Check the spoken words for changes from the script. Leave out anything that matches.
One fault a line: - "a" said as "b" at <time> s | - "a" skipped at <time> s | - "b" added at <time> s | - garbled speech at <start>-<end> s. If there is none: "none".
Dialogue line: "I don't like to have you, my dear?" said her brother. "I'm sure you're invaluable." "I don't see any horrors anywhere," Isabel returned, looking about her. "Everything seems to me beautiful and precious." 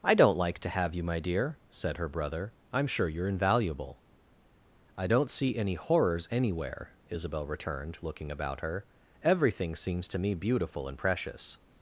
none